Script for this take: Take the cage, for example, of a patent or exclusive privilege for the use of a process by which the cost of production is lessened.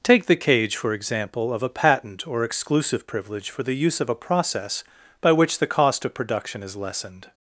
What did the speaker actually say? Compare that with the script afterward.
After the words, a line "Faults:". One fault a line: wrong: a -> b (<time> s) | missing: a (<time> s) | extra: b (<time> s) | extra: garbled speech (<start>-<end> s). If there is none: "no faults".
Take the cage, for example, of a patent or exclusive privilege for the use of a process by which the cost of production is lessened.
Faults:
no faults